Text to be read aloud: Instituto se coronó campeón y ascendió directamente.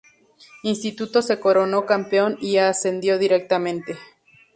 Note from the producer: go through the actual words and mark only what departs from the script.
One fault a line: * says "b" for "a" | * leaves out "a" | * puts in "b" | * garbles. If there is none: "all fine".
all fine